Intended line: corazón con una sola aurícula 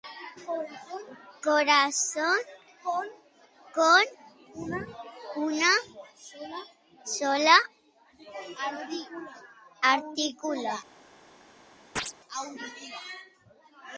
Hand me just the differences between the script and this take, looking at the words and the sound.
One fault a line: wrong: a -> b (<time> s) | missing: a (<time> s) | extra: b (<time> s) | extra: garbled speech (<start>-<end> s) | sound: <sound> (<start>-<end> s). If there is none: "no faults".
sound: chirp (12.0-12.1 s)